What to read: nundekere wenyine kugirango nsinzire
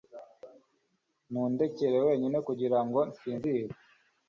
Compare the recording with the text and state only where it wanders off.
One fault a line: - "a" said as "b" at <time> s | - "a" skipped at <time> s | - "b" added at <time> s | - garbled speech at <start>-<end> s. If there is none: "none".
none